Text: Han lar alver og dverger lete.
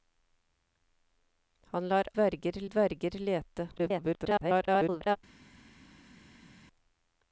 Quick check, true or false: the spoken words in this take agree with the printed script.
false